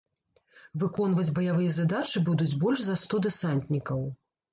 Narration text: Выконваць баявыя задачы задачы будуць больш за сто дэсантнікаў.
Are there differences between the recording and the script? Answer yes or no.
yes